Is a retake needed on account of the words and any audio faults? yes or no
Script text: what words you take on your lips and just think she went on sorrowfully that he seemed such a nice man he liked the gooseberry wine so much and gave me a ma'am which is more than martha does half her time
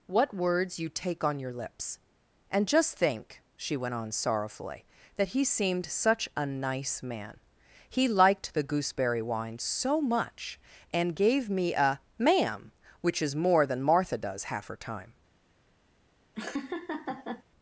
yes